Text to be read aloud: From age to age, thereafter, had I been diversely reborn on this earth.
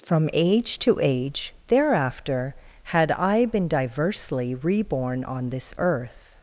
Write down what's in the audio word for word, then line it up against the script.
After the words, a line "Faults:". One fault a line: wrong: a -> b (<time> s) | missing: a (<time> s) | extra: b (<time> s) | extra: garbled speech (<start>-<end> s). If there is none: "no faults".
From age to age, thereafter, had I been diversely reborn on this earth.
Faults:
no faults